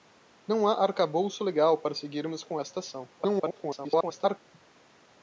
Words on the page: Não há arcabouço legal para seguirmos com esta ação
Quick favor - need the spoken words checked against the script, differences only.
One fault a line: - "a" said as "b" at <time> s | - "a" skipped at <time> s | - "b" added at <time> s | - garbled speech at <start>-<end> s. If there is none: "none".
- garbled speech at 3.2-4.4 s